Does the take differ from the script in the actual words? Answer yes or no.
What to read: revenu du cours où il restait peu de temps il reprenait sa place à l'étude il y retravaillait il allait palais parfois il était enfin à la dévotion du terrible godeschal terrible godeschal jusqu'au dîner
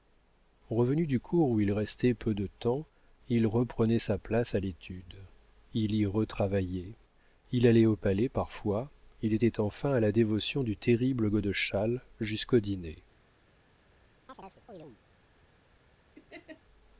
yes